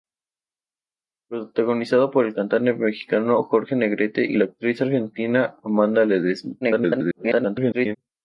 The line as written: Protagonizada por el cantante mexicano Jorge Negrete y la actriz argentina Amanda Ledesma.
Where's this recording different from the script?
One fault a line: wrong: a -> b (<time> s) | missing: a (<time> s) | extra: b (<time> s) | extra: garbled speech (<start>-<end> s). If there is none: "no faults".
extra: garbled speech (6.6-8.0 s)